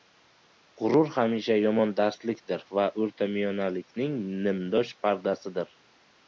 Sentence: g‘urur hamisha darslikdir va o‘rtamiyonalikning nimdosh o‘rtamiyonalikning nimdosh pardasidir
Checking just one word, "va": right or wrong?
right